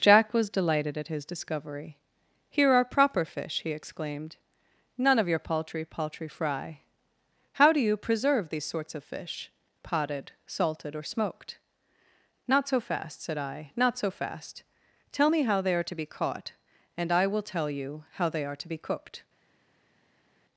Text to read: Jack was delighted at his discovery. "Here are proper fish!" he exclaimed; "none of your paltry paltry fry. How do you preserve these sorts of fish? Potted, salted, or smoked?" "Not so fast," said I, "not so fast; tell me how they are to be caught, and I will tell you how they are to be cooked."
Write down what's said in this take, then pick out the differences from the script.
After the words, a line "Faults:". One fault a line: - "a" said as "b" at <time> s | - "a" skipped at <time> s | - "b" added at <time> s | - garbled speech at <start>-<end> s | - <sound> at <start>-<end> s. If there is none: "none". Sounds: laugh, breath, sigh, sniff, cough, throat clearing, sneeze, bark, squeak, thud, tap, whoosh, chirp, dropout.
Jack was delighted at his discovery. "Here are proper fish!" he exclaimed; "none of your paltry paltry fry. How do you preserve these sorts of fish? Potted, salted, or smoked?" "Not so fast," said I, "not so fast; tell me how they are to be caught, and I will tell you how they are to be cooked."
Faults:
none